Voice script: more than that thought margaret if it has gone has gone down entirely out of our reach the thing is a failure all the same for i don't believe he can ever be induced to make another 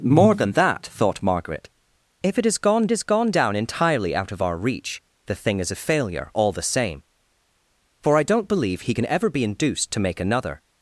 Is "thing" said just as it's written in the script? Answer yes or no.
yes